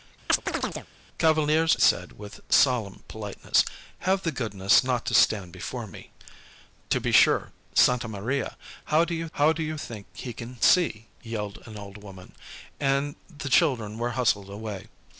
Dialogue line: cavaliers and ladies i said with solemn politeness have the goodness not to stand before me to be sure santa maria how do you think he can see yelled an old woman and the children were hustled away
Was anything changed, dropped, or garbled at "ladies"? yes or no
yes